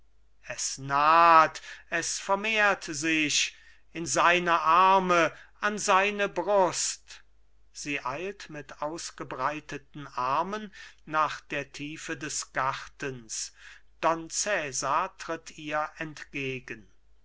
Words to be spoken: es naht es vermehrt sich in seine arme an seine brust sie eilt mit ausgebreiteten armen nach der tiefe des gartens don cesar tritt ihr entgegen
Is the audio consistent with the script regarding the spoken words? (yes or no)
yes